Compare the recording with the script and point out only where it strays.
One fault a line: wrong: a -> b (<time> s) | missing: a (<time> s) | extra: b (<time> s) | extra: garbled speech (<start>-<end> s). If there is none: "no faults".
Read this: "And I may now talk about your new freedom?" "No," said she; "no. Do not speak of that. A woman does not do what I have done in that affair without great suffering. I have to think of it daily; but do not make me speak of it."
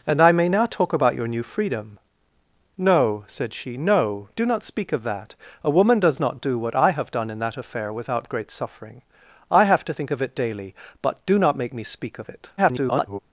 extra: garbled speech (12.6-13.2 s)